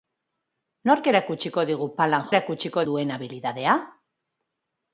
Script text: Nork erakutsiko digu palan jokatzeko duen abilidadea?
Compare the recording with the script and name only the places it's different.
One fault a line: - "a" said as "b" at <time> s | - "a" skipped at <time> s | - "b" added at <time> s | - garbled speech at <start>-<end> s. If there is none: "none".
- "jokatzeko" said as "erakutsiko" at 2.3 s